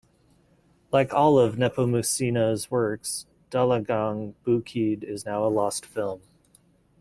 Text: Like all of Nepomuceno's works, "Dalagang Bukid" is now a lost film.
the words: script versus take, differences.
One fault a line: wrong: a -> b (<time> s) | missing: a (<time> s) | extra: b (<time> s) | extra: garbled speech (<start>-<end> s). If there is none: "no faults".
no faults